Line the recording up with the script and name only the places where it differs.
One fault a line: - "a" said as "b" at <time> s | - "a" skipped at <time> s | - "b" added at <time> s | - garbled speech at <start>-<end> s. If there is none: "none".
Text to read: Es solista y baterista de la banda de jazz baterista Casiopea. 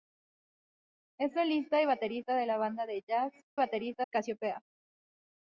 none